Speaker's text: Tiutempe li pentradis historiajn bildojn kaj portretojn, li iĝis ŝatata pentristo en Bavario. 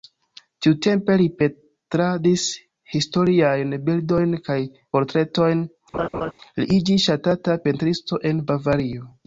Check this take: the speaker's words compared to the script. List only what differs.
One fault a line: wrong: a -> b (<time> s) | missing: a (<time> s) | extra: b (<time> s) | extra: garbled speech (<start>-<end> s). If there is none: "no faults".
no faults